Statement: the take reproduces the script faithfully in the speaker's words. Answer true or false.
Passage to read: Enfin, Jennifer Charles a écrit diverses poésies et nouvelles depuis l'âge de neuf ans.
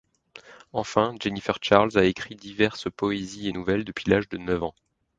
true